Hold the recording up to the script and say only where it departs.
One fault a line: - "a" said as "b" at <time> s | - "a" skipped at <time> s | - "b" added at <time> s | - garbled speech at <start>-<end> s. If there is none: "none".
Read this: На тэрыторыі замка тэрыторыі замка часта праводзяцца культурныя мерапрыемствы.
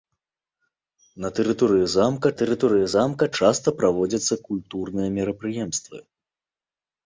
none